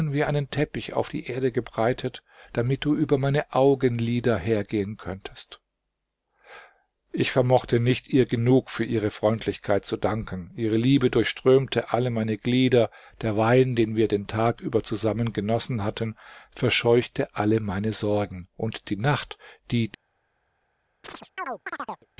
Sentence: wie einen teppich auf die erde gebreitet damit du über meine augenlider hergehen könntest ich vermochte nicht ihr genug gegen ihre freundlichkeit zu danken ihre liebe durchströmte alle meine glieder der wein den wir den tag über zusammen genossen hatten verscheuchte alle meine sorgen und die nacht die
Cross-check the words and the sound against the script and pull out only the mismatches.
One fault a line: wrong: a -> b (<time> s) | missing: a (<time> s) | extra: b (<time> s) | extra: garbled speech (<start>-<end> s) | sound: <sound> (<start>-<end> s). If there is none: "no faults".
wrong: gegen -> für (8.7 s)
sound: chirp (21.0-22.1 s)